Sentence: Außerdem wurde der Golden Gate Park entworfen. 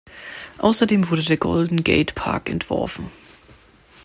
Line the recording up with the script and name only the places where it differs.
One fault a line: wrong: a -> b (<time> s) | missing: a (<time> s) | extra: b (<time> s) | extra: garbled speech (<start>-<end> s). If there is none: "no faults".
no faults